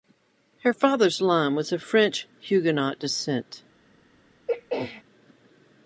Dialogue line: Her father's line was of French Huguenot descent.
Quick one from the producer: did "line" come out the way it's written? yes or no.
yes